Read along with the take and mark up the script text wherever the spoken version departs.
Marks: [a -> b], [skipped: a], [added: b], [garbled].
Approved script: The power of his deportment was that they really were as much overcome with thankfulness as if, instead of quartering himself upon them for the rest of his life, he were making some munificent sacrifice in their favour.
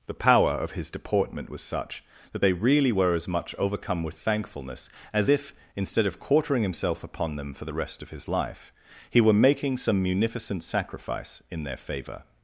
The power of his deportment was [added: such] that they really were as much overcome with thankfulness as if, instead of quartering himself upon them for the rest of his life, he were making some munificent sacrifice in their favour.